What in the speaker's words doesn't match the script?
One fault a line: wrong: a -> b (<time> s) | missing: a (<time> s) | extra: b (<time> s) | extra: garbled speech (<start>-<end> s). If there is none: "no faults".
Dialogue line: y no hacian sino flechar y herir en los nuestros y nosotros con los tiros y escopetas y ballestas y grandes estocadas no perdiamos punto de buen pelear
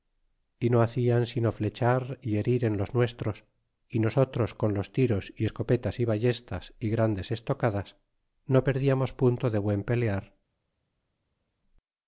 no faults